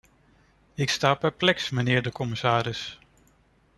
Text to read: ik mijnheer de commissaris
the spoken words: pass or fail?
fail